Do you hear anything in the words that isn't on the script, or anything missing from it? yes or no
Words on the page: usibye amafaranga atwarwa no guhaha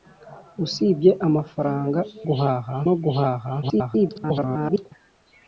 yes